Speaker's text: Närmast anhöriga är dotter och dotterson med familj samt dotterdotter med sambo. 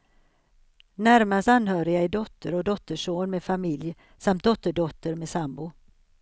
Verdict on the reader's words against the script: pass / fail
pass